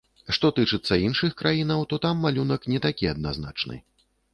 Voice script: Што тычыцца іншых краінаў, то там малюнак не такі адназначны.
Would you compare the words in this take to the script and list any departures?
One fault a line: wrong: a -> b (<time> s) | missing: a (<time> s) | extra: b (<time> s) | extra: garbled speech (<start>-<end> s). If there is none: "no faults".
no faults